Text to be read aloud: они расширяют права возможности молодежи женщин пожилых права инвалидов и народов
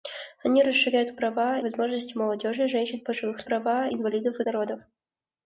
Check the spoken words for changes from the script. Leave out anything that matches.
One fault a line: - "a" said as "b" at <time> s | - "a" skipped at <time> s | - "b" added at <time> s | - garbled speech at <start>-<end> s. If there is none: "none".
none